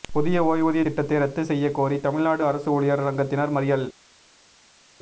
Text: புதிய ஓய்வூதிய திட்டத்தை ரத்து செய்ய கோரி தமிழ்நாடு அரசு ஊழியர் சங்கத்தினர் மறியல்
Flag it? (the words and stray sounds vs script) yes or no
no